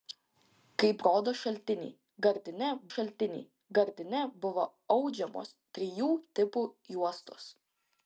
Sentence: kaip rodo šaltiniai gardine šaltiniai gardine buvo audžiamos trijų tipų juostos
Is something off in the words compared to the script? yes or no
no